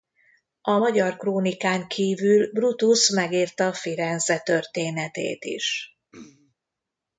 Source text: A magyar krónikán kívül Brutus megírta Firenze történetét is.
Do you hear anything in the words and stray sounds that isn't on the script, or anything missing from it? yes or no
yes